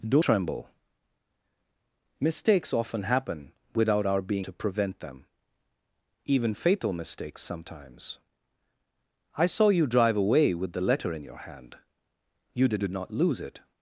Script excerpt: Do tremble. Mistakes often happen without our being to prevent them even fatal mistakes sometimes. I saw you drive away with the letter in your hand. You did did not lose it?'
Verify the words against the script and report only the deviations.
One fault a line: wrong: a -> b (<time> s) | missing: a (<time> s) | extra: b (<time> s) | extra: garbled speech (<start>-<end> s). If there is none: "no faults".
no faults